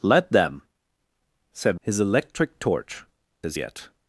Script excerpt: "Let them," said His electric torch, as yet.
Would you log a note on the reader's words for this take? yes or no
no